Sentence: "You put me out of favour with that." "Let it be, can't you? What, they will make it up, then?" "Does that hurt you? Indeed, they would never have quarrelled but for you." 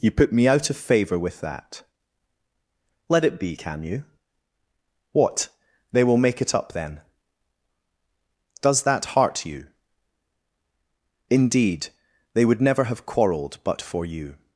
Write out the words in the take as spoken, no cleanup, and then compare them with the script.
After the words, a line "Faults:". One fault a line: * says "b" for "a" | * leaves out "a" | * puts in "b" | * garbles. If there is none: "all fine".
"You put me out of favour with that." "Let it be, can you? What, they will make it up, then?" "Does that heart you? Indeed, they would never have quarrelled but for you."
Faults:
* says "can" for "can't"
* says "heart" for "hurt"